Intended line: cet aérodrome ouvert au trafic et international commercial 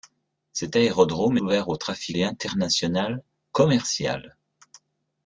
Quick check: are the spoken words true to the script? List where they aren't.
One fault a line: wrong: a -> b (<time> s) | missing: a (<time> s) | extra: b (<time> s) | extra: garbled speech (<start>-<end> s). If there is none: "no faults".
no faults